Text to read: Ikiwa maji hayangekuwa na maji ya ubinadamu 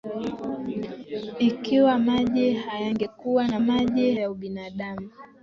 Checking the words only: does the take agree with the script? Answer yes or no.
yes